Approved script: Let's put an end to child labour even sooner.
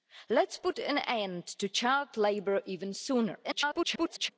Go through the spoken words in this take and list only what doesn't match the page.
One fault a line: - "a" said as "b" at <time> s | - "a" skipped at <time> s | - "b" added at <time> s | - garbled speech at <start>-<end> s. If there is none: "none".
- garbled speech at 3.4-4.3 s